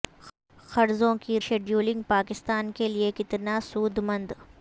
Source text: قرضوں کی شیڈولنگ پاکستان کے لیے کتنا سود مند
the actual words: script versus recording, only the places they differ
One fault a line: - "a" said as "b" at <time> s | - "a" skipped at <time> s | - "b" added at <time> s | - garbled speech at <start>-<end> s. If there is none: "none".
none